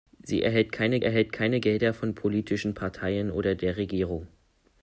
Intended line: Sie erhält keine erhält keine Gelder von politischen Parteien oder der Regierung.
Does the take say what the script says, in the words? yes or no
yes